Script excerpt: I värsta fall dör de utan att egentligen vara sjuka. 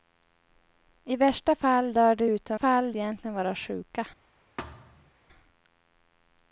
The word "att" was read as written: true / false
false